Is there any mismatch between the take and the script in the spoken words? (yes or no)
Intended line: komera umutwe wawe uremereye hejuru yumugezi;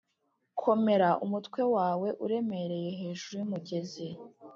no